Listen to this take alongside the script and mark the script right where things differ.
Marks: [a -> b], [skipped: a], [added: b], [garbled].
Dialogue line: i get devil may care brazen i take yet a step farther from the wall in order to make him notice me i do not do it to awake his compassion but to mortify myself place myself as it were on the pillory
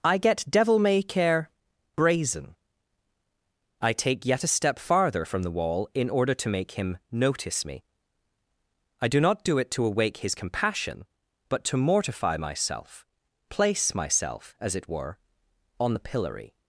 i get devil may care brazen i take yet a step farther from the wall in order to make him notice me i do not do it to awake his compassion but to mortify myself place myself as it were on the pillory